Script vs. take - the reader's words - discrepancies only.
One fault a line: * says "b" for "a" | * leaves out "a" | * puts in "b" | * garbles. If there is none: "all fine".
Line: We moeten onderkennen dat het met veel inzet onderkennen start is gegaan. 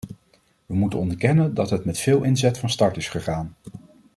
* says "van" for "onderkennen"